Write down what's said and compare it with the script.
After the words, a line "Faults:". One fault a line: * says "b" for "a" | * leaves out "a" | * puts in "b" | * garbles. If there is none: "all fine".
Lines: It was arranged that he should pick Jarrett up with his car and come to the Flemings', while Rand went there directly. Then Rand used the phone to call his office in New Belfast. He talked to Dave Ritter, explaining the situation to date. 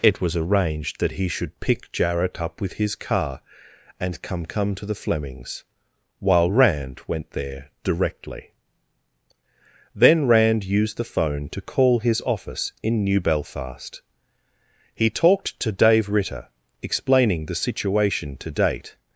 It was arranged that he should pick Jarrett up with his car and come come to the Flemings', while Rand went there directly. Then Rand used the phone to call his office in New Belfast. He talked to Dave Ritter, explaining the situation to date.
Faults:
* puts in "come"